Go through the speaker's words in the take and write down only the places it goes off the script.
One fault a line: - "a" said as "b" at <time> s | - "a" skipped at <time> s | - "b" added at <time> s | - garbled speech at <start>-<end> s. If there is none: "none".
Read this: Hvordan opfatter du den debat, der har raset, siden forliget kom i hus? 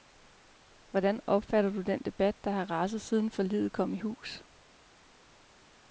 none